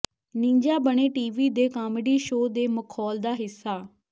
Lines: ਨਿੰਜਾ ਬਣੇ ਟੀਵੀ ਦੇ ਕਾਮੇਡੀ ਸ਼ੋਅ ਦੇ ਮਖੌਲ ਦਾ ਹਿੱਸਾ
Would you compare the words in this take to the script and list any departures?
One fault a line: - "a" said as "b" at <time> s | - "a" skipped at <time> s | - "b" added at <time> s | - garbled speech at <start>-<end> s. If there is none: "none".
none